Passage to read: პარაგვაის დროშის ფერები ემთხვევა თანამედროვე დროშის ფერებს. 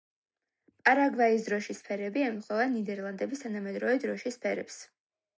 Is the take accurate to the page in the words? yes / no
no